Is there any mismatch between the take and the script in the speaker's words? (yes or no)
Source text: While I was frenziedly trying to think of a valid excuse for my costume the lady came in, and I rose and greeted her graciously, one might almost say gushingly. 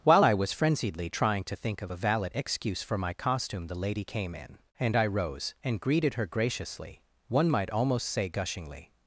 no